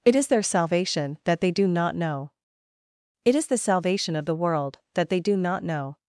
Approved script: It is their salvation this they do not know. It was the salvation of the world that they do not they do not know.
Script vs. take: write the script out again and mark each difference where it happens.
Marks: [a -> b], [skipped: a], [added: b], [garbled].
It is their salvation [this -> that] they do not know. It [was -> is] the salvation of the world that they do not [skipped: they do not] know.